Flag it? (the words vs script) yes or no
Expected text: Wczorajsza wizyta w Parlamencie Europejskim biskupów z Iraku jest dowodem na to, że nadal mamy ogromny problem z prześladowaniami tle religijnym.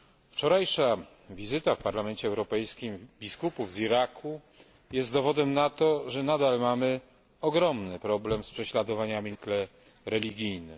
no